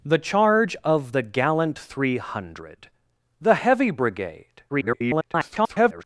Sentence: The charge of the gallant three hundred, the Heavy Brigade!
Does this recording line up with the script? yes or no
no